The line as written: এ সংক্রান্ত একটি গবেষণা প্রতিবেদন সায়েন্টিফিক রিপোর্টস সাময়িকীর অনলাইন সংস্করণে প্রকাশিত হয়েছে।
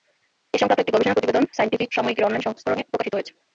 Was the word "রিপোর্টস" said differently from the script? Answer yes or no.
yes